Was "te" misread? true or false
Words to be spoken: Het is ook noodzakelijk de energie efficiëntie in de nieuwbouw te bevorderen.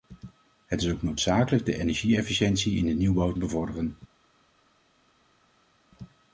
true